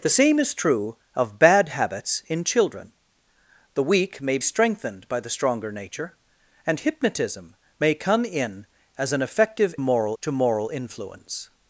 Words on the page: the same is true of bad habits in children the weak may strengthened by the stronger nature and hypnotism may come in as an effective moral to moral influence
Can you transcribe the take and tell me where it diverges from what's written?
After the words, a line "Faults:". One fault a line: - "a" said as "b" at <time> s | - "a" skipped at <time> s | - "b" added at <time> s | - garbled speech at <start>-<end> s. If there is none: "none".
the same is true of bad habits in children the weak may strengthened by the stronger nature and hypnotism may come in as an effective moral to moral influence
Faults:
none